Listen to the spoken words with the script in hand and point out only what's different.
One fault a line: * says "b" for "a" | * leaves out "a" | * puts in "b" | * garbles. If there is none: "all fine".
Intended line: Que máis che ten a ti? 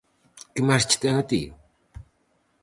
all fine